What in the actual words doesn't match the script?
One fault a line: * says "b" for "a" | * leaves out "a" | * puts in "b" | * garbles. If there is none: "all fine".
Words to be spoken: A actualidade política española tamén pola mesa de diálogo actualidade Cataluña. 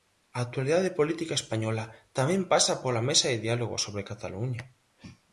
* puts in "pasa"
* says "sobre" for "actualidade"